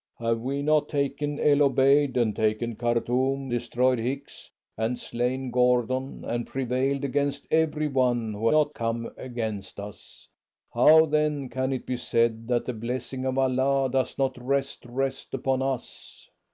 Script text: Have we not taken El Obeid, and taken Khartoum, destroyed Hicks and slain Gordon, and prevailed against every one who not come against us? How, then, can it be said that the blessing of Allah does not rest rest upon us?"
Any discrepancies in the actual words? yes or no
no